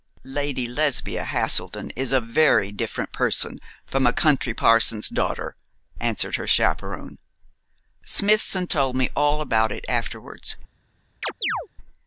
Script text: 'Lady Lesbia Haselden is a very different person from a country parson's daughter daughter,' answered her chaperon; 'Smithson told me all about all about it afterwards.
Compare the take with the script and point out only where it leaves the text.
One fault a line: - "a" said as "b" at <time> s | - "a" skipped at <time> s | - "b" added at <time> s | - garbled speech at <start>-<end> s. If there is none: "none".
- "daughter" skipped at 5.6 s
- "all about" skipped at 9.7 s